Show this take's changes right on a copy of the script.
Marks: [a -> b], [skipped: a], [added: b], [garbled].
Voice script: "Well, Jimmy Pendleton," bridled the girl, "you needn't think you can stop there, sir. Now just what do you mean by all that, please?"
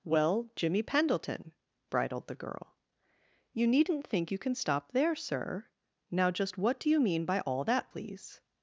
"Well, Jimmy Pendleton," bridled the girl, "you needn't think you can stop there, sir. Now just what do you mean by all that, please?"